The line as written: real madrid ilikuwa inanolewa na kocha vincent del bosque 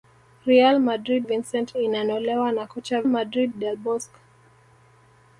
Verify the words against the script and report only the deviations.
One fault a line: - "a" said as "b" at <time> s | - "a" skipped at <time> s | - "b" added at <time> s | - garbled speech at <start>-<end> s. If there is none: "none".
- "ilikuwa" said as "vincent" at 1.2 s
- "vincent" said as "madrid" at 3.1 s